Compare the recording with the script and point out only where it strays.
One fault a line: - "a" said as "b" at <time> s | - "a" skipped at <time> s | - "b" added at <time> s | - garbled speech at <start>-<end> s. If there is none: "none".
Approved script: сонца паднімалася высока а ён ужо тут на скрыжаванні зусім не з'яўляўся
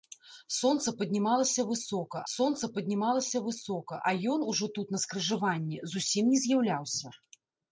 - "сонца паднімалася высока" added at 2.3 s